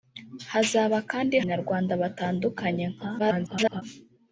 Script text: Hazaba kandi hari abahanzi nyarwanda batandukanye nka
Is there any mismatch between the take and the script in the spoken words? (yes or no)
yes